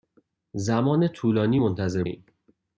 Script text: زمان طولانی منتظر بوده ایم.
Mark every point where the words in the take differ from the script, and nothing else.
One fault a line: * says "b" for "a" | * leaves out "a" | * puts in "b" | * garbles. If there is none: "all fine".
* leaves out "بوده"